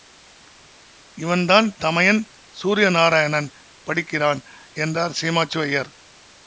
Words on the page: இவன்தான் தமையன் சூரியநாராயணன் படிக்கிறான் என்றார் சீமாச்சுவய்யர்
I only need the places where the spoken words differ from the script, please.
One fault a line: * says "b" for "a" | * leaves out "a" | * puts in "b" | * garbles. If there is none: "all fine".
all fine